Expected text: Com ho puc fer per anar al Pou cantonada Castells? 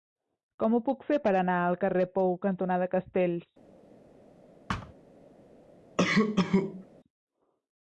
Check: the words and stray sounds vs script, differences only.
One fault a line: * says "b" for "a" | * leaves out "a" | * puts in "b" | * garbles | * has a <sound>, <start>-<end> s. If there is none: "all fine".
* puts in "carrer"
* has a thud, 4.7-4.9 s
* has a cough, 6.0-6.9 s